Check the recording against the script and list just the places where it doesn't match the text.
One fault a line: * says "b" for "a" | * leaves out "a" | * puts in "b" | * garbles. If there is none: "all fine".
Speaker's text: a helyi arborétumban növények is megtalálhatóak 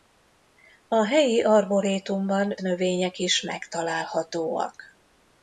all fine